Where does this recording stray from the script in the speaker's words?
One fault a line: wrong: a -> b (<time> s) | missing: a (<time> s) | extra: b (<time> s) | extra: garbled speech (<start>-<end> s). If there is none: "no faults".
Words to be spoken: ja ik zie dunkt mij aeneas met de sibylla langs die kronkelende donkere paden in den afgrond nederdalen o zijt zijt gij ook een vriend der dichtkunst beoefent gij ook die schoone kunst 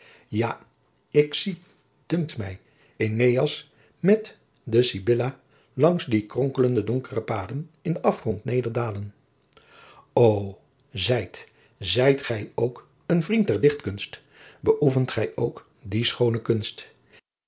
no faults